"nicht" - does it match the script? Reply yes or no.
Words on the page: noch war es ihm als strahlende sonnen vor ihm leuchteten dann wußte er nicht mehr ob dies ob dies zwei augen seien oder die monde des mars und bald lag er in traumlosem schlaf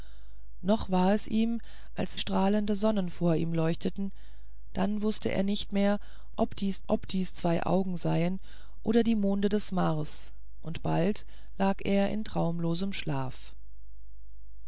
yes